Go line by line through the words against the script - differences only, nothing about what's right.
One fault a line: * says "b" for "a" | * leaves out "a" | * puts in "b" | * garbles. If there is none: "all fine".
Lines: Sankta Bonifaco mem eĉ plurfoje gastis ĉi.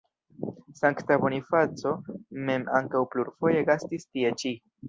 * says "ankaŭ" for "eĉ"
* puts in "tie"